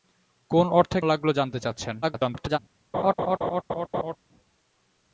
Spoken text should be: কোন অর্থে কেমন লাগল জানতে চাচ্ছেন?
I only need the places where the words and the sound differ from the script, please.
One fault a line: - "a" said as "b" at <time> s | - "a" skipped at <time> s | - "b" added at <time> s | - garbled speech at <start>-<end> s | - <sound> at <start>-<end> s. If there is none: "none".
- "কেমন" skipped at 1.0 s
- garbled speech at 2.0-2.6 s
- laugh at 2.9-4.2 s